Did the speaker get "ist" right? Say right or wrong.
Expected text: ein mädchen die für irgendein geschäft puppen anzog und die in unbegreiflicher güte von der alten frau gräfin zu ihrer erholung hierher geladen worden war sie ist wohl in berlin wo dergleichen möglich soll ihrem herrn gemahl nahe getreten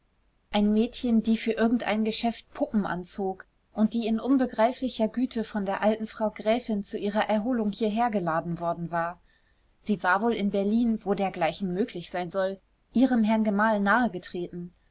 wrong